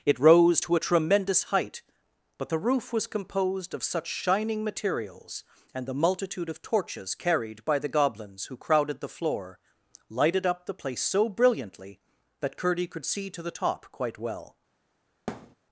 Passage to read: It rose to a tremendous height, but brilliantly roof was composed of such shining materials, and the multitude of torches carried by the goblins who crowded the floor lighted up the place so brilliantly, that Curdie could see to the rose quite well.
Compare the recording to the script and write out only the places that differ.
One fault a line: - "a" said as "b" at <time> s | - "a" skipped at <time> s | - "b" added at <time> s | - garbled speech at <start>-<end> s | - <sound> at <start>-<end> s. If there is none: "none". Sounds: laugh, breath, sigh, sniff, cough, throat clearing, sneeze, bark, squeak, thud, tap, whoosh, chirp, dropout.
- "brilliantly" said as "the" at 2.5 s
- "rose" said as "top" at 13.5 s
- thud at 15.3-15.6 s